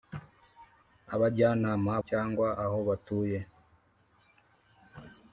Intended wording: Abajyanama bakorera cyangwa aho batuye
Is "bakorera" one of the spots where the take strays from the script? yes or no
yes